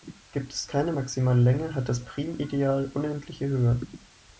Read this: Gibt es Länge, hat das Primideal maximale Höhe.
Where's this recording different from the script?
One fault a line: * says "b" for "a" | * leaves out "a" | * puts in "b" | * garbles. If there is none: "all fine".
* puts in "keine maximale"
* says "unendliche" for "maximale"